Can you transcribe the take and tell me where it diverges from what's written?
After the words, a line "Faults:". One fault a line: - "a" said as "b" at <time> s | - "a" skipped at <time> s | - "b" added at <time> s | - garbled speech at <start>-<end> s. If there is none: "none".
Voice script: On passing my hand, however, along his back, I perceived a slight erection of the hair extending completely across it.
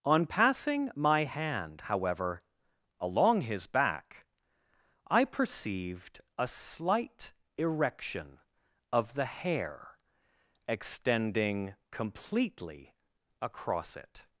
On passing my hand, however, along his back, I perceived a slight erection of the hair extending completely across it.
Faults:
none